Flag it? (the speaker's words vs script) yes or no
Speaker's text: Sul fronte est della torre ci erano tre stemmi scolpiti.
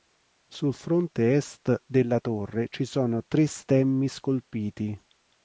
yes